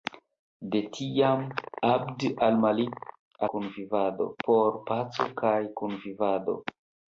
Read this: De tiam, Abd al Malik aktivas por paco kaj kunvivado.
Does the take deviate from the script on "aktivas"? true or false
true